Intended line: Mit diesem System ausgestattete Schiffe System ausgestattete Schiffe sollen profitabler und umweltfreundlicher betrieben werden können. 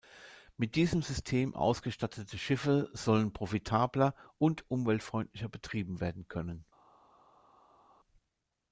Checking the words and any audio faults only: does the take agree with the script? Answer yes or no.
no